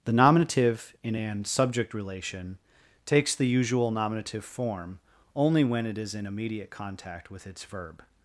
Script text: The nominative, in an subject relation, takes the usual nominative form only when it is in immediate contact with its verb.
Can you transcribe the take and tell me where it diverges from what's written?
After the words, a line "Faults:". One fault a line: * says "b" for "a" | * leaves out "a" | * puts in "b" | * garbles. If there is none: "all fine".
The nominative, in an subject relation, takes the usual nominative form only when it is in immediate contact with its verb.
Faults:
all fine